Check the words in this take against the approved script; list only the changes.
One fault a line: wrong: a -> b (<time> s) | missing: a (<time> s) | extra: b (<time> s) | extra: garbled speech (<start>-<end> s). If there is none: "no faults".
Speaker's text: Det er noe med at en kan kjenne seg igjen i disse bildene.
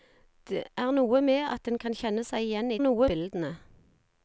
wrong: disse -> noe (2.8 s)